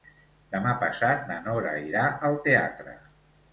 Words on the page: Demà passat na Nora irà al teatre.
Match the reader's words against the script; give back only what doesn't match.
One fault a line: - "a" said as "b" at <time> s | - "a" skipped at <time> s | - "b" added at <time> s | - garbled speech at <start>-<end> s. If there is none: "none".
none